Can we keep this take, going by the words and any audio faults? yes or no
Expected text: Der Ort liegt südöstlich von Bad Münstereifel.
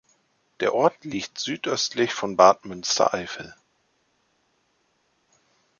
yes